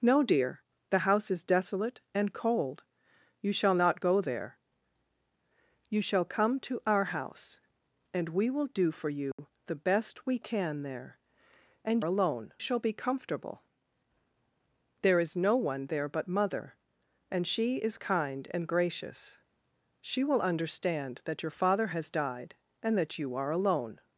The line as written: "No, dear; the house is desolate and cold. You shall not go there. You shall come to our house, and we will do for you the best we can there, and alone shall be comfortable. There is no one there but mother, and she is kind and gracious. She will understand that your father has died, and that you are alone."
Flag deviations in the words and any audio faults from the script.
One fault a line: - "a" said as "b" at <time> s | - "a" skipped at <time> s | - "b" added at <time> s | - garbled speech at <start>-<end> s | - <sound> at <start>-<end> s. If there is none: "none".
- dropout at 9.3-9.4 s